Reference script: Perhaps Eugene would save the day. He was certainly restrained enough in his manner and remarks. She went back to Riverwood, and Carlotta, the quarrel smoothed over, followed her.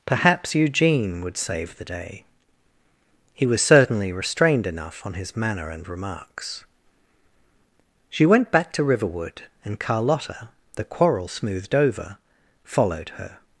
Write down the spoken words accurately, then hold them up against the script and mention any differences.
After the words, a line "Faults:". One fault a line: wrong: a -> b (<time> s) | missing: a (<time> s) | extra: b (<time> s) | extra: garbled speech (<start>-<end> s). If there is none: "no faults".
Perhaps Eugene would save the day. He was certainly restrained enough on his manner and remarks. She went back to Riverwood, and Carlotta, the quarrel smoothed over, followed her.
Faults:
wrong: in -> on (5.0 s)